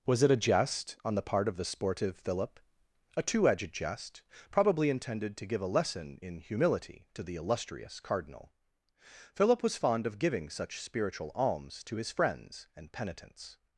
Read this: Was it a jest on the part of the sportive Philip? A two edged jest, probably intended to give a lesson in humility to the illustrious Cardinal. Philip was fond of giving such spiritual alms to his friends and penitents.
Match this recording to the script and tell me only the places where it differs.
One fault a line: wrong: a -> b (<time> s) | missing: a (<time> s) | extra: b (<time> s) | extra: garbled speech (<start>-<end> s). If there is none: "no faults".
no faults